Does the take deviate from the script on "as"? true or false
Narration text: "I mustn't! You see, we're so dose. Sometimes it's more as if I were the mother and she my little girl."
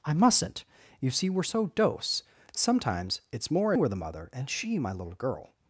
true